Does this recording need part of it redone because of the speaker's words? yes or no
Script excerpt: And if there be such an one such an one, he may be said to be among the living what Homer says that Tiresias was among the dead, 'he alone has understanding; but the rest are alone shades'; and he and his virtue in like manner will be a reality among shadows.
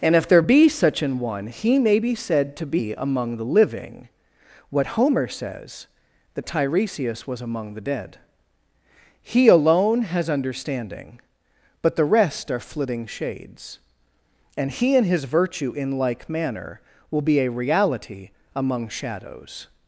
yes